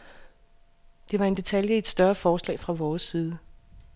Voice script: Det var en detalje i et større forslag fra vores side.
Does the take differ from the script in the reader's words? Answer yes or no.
no